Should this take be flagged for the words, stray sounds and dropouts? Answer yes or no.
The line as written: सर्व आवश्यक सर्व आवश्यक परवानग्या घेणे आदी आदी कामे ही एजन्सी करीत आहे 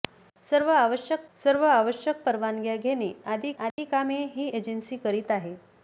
yes